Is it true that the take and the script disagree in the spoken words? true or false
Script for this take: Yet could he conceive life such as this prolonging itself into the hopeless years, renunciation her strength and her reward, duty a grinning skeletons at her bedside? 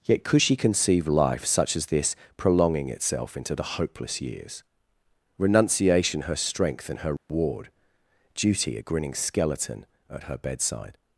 true